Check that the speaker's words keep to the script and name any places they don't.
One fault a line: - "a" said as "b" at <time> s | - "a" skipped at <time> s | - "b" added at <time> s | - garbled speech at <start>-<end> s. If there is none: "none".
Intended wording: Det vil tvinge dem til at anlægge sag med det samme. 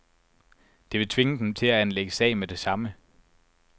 none